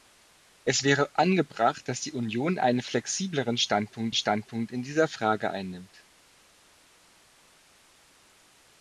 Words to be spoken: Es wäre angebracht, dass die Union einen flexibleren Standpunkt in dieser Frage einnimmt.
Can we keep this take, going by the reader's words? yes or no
no